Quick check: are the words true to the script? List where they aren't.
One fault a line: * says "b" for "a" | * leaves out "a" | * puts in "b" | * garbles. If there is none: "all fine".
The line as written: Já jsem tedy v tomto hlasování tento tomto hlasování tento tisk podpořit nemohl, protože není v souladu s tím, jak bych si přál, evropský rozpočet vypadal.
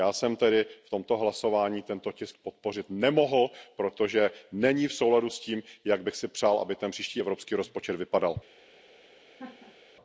* leaves out "tomto hlasování tento"
* puts in "aby ten příští"